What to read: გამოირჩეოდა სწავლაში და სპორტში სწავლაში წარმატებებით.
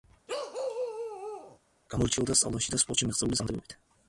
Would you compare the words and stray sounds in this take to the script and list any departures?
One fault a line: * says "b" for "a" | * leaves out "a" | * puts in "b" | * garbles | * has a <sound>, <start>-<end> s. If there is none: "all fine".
* has a bark, 0.3-1.6 s
* says "მიღწეული" for "სწავლაში"